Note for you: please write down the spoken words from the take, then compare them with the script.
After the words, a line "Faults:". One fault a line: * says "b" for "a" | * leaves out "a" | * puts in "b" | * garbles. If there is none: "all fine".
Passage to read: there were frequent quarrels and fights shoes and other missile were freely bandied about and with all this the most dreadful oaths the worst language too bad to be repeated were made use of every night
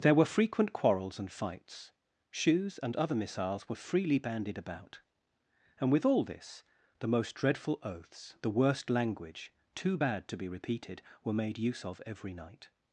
there were frequent quarrels and fights shoes and other missiles were freely bandied about and with all this the most dreadful oaths the worst language too bad to be repeated were made use of every night
Faults:
* says "missiles" for "missile"